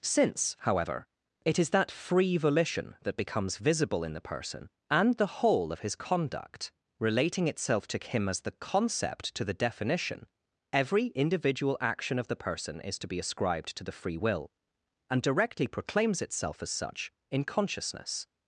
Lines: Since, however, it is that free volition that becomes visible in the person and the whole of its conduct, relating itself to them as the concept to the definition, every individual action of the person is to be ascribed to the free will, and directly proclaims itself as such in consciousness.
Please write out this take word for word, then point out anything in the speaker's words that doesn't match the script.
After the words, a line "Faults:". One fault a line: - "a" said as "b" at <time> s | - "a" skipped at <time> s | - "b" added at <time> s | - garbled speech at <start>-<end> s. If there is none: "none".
Since, however, it is that free volition that becomes visible in the person and the whole of his conduct, relating itself to him as the concept to the definition, every individual action of the person is to be ascribed to the free will, and directly proclaims itself as such in consciousness.
Faults:
- "its" said as "his" at 5.8 s
- "them" said as "him" at 8.0 s